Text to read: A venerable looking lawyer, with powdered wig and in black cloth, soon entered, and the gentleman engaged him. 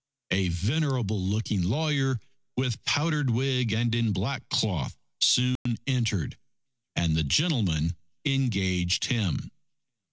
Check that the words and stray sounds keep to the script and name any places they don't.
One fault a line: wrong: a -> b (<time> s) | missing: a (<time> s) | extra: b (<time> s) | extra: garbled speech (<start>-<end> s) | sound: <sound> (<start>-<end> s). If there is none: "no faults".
sound: dropout (5.6-5.7 s)